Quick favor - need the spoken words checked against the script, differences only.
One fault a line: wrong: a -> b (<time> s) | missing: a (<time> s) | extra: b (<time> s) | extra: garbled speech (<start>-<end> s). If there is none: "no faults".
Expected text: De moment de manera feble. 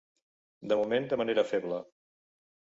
no faults